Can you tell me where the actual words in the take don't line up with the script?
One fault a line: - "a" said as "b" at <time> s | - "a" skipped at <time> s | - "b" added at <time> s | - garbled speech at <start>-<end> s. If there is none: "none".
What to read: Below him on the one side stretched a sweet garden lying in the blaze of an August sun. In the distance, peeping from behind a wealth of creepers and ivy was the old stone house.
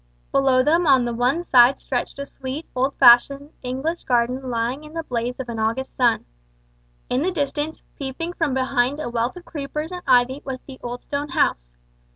- "him" said as "them" at 0.6 s
- "old fashioned English" added at 2.8 s